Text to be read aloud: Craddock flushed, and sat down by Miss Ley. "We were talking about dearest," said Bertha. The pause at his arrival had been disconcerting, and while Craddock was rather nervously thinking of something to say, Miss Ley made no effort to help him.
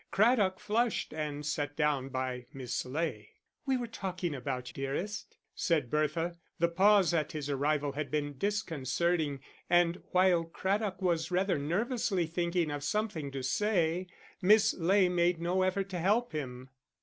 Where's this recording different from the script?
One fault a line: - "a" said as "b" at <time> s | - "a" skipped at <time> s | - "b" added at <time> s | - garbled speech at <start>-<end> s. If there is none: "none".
none